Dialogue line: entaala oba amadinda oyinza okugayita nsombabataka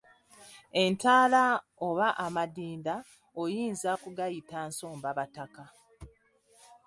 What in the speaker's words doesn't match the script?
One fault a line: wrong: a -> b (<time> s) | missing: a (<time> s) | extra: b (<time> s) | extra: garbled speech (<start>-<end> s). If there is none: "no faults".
no faults